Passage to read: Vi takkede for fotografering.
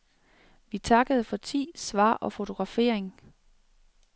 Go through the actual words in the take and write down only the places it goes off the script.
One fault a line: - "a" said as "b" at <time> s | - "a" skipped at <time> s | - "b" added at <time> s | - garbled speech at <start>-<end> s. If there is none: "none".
- "tid svar og" added at 1.4 s